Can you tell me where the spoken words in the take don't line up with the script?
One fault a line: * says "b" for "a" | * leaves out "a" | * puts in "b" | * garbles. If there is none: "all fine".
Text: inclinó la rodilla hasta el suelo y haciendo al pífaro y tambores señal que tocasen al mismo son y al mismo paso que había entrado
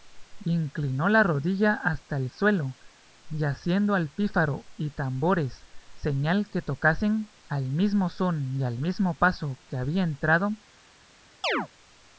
all fine